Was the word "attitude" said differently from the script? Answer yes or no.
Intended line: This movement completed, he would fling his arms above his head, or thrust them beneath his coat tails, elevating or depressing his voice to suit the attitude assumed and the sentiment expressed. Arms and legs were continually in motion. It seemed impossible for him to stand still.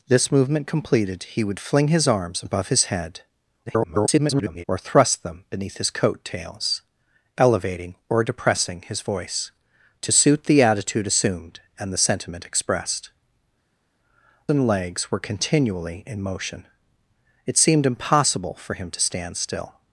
no